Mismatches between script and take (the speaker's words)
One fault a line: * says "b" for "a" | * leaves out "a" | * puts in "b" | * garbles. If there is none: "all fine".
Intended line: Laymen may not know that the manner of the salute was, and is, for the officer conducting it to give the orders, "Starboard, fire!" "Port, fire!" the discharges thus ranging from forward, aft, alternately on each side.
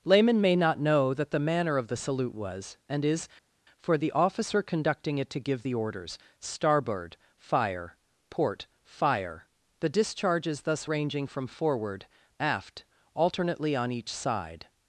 all fine